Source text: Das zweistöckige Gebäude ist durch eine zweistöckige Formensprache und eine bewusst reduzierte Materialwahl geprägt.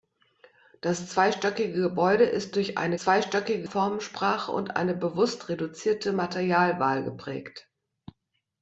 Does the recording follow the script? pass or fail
pass